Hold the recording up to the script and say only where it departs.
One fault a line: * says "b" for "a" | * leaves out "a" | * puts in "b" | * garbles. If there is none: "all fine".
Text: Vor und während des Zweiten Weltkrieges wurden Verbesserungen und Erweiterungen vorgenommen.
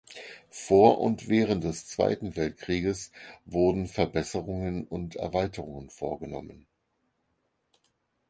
all fine